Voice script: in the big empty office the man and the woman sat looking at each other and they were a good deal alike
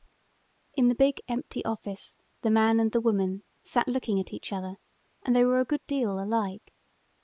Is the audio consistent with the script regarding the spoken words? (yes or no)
yes